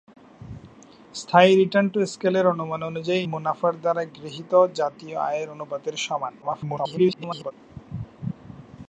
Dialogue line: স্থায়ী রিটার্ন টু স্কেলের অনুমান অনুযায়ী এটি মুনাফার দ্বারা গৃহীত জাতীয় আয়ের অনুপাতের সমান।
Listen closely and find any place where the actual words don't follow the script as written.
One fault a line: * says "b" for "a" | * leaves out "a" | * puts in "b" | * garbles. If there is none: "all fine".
* leaves out "এটি"
* garbles